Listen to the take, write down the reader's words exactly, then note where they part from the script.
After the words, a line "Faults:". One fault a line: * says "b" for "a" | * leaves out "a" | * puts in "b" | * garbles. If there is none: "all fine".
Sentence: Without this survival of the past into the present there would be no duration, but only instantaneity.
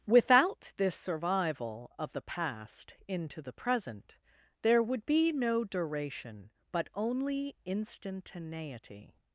Without this survival of the past into the present there would be no duration, but only instantaneity.
Faults:
all fine